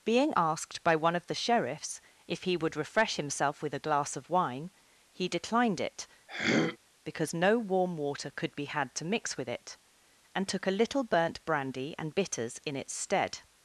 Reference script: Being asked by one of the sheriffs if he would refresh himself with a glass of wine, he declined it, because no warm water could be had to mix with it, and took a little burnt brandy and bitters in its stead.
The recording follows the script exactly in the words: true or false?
true